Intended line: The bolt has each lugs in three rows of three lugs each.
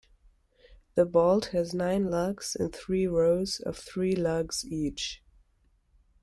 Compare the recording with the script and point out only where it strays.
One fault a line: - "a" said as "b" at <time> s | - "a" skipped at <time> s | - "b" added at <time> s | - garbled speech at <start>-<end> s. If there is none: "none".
- "each" said as "nine" at 1.8 s